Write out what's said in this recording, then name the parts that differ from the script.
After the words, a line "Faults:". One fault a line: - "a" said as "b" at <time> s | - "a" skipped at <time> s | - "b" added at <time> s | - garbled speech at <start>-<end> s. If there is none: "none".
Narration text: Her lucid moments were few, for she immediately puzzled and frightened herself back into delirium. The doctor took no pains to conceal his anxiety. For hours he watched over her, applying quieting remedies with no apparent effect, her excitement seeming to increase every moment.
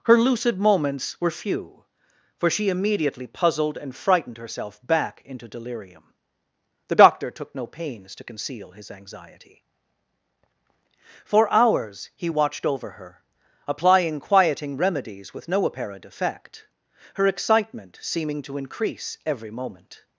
Her lucid moments were few, for she immediately puzzled and frightened herself back into delirium. The doctor took no pains to conceal his anxiety. For hours he watched over her, applying quieting remedies with no apparent effect, her excitement seeming to increase every moment.
Faults:
none